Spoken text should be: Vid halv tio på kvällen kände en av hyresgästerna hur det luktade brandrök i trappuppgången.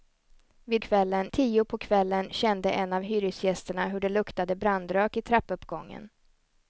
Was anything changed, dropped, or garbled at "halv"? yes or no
yes